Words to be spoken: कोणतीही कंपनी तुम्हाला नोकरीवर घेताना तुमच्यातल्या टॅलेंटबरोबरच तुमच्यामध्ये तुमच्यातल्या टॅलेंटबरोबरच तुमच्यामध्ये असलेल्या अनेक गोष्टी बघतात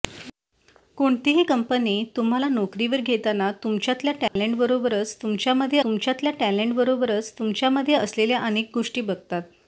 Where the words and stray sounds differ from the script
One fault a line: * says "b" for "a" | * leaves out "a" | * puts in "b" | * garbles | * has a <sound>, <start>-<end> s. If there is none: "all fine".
* has a dropout, 4.3-4.4 s